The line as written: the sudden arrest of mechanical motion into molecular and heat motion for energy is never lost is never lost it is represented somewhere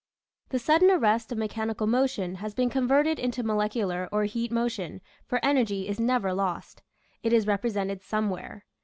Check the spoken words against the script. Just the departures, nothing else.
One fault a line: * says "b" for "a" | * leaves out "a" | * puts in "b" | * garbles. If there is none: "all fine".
* puts in "has been converted"
* says "or" for "and"
* leaves out "is never lost"